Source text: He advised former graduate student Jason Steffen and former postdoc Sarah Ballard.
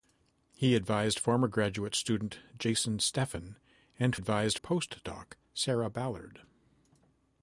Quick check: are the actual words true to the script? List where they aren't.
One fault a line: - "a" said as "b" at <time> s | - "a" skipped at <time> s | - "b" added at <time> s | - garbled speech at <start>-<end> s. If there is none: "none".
- "former" said as "advised" at 4.1 s